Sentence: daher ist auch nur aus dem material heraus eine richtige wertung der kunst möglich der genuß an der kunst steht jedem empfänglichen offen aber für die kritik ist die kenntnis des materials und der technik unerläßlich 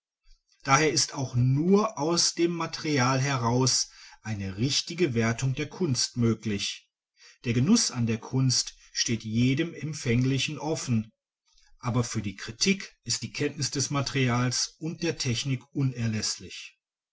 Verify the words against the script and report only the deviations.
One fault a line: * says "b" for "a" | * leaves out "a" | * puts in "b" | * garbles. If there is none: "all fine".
all fine